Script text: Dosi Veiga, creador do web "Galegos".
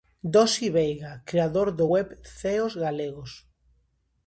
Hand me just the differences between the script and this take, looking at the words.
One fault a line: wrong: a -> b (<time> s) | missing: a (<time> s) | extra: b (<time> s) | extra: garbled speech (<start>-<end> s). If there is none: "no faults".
extra: Ceos (2.4 s)